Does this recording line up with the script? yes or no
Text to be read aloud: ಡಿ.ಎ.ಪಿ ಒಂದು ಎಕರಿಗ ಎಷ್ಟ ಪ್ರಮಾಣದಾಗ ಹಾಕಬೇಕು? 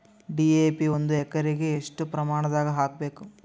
yes